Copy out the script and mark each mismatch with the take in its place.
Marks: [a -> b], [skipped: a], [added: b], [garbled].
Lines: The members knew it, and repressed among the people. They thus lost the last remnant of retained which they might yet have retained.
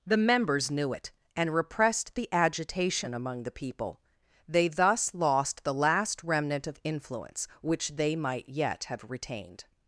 The members knew it, and repressed [added: the agitation] among the people. They thus lost the last remnant of [retained -> influence] which they might yet have retained.